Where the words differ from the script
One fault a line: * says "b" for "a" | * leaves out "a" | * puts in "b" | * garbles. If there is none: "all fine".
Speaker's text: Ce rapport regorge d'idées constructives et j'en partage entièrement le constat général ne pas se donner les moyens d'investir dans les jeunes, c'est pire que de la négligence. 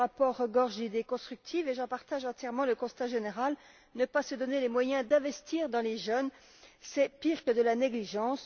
all fine